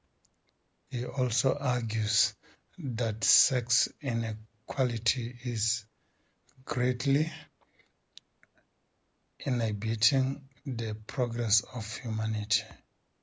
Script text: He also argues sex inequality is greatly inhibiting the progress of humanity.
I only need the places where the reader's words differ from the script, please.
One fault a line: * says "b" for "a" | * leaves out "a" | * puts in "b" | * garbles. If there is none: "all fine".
* puts in "that"